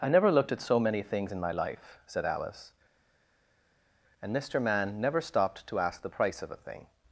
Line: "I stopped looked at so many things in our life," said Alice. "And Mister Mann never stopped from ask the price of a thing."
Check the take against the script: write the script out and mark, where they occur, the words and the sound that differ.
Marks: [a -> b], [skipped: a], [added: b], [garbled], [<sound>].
"I [stopped -> never] looked at so many things in [our -> my] life," said Alice. "And Mister Mann never stopped [from -> to] ask the price of a thing."